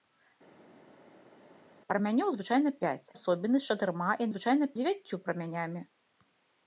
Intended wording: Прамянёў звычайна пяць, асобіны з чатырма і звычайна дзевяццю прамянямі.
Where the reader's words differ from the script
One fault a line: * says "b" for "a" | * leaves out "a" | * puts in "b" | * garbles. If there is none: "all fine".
all fine